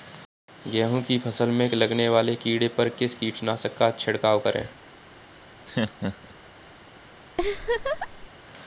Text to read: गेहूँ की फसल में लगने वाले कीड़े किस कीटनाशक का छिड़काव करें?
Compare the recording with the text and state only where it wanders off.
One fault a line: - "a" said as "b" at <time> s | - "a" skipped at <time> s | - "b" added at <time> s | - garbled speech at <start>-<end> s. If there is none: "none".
- "पर" added at 2.7 s